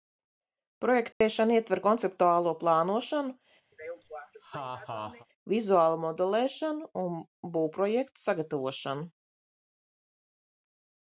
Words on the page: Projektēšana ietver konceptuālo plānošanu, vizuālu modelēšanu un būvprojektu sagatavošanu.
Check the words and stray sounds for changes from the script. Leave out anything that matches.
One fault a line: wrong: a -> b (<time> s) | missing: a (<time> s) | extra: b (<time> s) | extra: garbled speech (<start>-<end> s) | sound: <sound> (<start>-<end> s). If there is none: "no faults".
sound: dropout (1.1-1.2 s)
sound: laugh (3.7-5.3 s)